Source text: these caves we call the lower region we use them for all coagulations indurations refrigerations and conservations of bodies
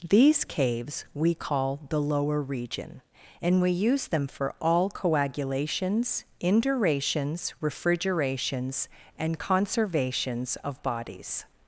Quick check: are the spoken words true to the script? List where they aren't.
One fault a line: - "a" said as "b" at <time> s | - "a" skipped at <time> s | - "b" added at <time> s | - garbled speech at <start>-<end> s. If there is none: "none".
- "and" added at 3.4 s